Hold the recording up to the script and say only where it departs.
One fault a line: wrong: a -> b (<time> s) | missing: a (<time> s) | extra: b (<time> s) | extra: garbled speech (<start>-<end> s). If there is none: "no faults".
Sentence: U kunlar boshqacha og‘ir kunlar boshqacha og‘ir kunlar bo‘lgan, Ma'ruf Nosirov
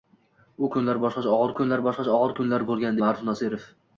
no faults